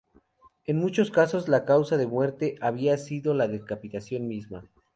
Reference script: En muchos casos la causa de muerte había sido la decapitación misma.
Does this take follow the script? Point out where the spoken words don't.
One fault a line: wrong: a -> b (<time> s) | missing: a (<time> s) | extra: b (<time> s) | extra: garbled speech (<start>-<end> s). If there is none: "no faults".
no faults